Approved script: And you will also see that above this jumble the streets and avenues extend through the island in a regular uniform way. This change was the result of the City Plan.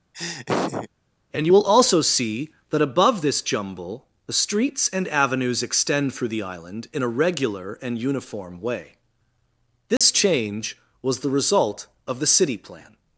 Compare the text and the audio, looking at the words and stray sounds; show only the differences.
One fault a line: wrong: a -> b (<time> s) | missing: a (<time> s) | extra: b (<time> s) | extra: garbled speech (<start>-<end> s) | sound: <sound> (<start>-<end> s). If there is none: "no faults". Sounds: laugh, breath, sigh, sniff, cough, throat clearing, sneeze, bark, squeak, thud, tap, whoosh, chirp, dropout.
sound: laugh (0.1-0.9 s)
extra: and (7.8 s)
sound: dropout (10.0-10.0 s)